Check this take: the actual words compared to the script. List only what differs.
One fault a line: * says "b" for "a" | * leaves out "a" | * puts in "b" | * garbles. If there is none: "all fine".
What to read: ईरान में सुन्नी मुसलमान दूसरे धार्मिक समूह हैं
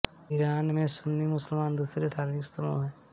all fine